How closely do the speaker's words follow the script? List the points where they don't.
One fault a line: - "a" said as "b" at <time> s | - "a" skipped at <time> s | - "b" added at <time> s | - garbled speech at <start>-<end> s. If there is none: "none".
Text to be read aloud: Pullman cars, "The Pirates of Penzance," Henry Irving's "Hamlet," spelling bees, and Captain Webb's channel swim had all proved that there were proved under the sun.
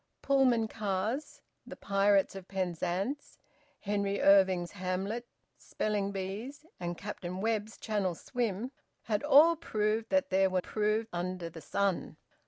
none